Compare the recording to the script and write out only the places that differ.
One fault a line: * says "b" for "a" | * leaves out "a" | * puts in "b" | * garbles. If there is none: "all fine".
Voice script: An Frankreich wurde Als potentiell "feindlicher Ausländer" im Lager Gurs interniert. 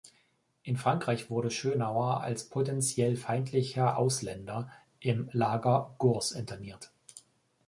* says "In" for "An"
* puts in "Schönauer"